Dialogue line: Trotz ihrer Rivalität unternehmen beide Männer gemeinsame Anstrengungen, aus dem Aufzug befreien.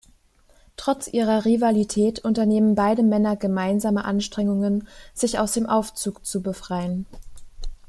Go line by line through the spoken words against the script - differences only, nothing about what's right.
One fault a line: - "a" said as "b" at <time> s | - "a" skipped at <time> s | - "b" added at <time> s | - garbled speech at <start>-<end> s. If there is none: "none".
- "sich" added at 5.1 s
- "zu" added at 6.3 s